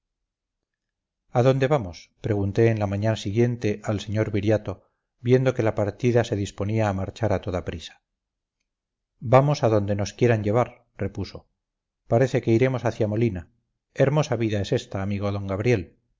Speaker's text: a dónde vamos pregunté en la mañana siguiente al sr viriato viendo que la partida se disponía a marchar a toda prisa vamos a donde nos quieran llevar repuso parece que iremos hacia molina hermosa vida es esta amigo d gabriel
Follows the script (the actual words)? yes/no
yes